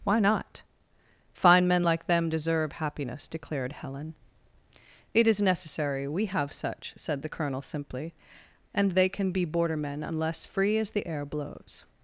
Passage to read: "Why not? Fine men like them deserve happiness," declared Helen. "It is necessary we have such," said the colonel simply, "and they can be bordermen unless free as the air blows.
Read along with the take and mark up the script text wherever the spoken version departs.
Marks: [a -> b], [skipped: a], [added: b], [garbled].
"Why not? Fine men like them deserve happiness," declared Helen. "It is necessary we have such," said the colonel simply, "and they can be bordermen unless free as the air blows.